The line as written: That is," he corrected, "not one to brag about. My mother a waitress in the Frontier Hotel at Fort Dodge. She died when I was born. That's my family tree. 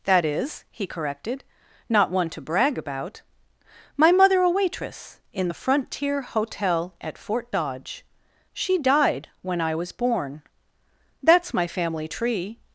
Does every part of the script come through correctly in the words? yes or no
yes